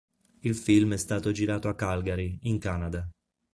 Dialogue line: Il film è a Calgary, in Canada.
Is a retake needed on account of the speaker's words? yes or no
yes